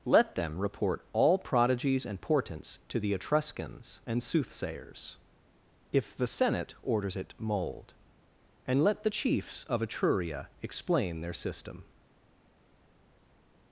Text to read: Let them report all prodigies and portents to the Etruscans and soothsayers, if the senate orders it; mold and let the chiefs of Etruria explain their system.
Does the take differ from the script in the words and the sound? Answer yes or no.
no